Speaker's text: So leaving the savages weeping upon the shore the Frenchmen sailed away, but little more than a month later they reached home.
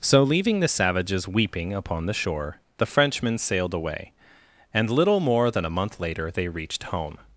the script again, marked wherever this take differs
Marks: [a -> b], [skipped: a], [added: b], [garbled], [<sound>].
So leaving the savages weeping upon the shore the Frenchmen sailed away, [but -> and] little more than a month later they reached home.